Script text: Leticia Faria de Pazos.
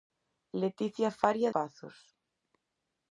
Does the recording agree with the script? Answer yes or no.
no